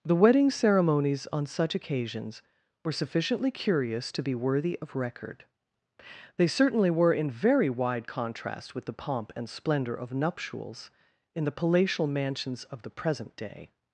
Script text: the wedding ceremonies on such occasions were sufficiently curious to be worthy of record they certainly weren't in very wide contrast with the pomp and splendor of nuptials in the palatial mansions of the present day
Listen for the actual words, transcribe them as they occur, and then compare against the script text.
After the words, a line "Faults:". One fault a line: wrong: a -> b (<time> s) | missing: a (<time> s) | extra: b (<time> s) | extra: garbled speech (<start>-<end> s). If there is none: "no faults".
the wedding ceremonies on such occasions were sufficiently curious to be worthy of record they certainly were in very wide contrast with the pomp and splendor of nuptials in the palatial mansions of the present day
Faults:
wrong: weren't -> were (6.9 s)